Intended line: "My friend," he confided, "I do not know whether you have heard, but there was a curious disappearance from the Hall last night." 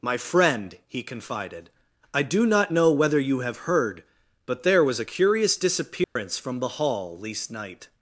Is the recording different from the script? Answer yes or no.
yes